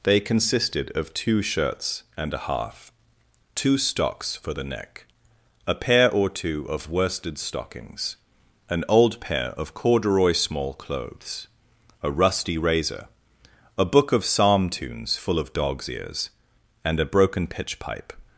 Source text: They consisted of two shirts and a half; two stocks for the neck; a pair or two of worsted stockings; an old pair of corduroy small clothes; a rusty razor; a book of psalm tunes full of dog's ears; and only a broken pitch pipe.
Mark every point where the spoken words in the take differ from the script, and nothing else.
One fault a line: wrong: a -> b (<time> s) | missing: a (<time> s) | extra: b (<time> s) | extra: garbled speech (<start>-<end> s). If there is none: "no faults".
missing: only (17.0 s)